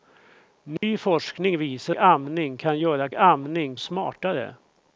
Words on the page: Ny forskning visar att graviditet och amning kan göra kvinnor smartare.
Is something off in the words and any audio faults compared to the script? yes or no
yes